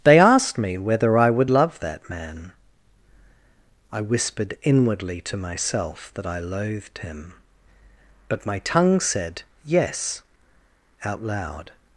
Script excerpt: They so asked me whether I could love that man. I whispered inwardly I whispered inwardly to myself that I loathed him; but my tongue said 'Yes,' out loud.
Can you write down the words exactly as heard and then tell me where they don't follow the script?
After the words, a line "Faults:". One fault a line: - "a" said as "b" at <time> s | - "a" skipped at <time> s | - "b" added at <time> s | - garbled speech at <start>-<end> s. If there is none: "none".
They asked me whether I would love that man. I whispered inwardly to myself that I loathed him; but my tongue said 'Yes,' out loud.
Faults:
- "so" skipped at 0.2 s
- "could" said as "would" at 1.3 s
- "I whispered inwardly" skipped at 5.2 s